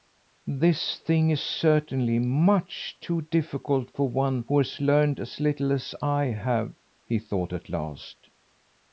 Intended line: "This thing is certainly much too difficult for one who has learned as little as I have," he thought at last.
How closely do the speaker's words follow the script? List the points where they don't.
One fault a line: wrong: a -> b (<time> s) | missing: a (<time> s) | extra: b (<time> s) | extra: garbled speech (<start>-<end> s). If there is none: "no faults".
no faults